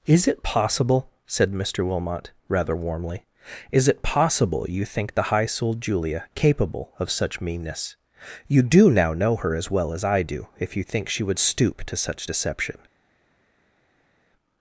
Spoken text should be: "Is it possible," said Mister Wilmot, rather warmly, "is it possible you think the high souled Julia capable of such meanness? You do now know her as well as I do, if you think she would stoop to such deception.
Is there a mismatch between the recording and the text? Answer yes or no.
no